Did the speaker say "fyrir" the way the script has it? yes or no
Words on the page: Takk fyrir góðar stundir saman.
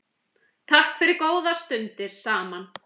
yes